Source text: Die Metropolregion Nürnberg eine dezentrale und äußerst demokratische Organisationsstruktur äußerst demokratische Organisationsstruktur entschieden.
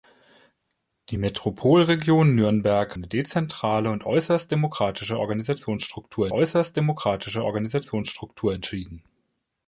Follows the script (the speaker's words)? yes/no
yes